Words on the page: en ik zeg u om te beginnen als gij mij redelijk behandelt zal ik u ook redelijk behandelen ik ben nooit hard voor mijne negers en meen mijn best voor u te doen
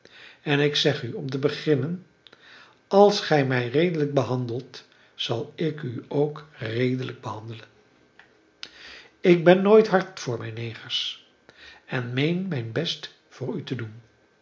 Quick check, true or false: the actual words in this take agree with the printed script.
true